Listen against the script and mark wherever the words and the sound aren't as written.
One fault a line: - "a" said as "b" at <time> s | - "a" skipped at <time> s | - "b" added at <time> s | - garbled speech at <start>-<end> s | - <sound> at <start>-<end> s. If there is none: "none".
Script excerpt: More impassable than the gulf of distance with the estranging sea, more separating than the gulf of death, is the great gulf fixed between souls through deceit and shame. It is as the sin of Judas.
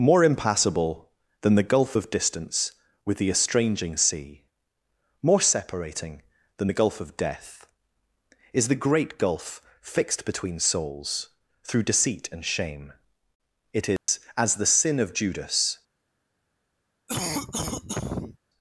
- dropout at 14.0-14.1 s
- cough at 17.1-18.4 s